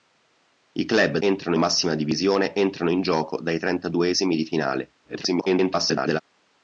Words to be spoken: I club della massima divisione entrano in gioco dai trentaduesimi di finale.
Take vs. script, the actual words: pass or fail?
fail